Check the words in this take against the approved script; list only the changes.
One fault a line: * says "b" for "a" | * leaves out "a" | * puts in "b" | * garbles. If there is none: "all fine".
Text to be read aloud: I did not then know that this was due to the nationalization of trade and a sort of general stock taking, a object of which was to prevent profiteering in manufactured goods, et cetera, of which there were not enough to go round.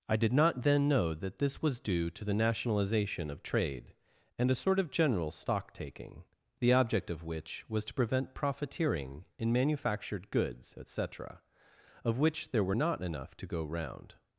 * says "the" for "a"